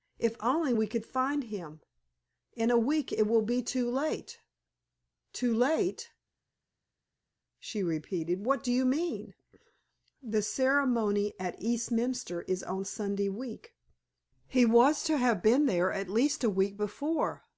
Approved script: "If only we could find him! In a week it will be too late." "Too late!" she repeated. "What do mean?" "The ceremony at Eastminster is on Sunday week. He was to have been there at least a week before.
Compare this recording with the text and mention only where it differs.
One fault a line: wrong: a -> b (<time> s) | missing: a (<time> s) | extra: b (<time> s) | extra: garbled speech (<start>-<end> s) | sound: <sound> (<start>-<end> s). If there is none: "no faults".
extra: you (8.7 s)